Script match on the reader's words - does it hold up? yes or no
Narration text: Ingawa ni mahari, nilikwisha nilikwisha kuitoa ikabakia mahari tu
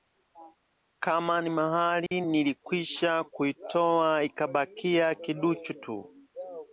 no